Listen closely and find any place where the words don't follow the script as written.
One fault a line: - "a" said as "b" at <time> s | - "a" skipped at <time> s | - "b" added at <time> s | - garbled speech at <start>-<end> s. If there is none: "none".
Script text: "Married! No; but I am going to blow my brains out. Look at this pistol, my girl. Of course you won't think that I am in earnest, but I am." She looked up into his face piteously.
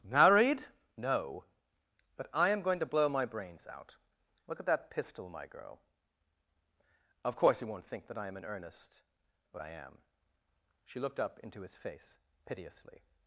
- "this" said as "that" at 4.7 s